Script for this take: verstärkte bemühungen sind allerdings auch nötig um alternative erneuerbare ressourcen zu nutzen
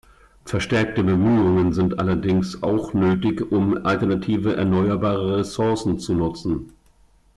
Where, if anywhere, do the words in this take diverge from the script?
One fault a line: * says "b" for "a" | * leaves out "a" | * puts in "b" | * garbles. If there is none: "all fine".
all fine